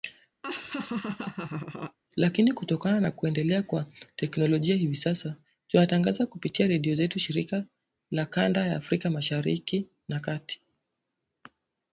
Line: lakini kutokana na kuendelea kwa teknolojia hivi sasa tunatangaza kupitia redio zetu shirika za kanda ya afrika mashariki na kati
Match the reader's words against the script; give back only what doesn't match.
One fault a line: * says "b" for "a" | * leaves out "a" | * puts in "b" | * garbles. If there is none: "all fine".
all fine